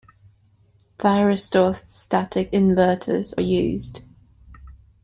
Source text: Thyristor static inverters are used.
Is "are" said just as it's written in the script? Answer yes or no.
no